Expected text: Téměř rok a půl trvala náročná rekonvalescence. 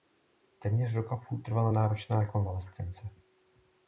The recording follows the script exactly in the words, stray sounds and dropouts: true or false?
true